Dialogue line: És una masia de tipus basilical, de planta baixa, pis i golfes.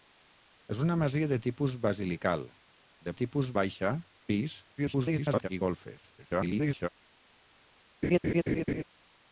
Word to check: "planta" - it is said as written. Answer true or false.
false